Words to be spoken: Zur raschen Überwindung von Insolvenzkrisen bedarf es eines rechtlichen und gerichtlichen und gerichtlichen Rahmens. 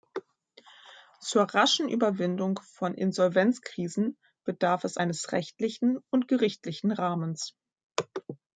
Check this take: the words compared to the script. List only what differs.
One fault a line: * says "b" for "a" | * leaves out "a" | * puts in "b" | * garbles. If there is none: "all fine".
* leaves out "und gerichtlichen"